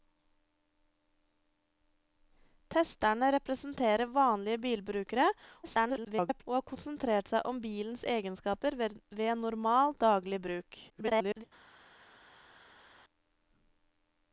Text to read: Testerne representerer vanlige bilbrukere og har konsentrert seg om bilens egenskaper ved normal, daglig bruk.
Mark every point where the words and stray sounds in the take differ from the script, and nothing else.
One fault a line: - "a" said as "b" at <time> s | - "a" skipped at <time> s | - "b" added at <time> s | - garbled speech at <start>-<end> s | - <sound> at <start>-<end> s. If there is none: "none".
- garbled speech at 5.6-6.4 s
- garbled speech at 10.9-11.4 s